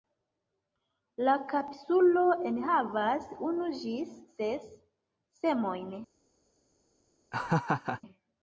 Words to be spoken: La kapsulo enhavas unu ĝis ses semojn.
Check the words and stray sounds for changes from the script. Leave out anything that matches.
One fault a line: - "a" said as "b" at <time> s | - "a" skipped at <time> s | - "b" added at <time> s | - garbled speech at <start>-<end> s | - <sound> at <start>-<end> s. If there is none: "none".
- laugh at 7.3-8.0 s